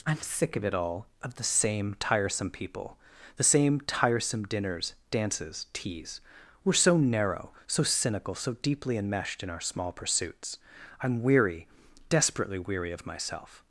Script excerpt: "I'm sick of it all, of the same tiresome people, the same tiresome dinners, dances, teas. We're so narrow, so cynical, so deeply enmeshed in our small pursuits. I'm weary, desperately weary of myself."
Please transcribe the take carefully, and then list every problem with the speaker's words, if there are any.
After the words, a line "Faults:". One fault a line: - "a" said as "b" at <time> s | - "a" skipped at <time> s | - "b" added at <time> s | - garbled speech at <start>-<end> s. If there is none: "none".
"I'm sick of it all, of the same tiresome people, the same tiresome dinners, dances, teas. We're so narrow, so cynical, so deeply enmeshed in our small pursuits. I'm weary, desperately weary of myself."
Faults:
none